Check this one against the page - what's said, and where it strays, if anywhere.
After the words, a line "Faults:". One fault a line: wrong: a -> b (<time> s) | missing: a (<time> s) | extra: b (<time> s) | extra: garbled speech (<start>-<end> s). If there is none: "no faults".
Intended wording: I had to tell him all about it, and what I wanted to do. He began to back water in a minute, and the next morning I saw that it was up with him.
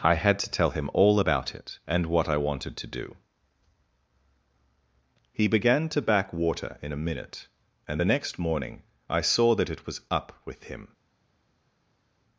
I had to tell him all about it, and what I wanted to do. He began to back water in a minute, and the next morning I saw that it was up with him.
Faults:
no faults